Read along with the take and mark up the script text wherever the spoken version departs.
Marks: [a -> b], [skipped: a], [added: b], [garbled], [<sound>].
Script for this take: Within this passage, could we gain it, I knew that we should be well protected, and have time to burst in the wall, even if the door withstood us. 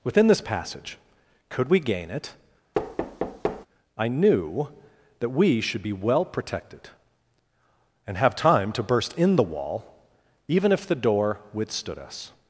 Within this passage, could we gain it, [thud] I knew that we should be well protected, and have time to burst in the wall, even if the door withstood us.